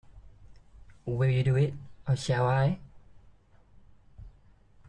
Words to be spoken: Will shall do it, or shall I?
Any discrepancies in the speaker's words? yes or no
yes